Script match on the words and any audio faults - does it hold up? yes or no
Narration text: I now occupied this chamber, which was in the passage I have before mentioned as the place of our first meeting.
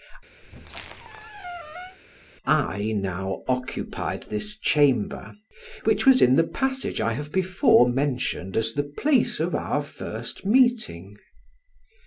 no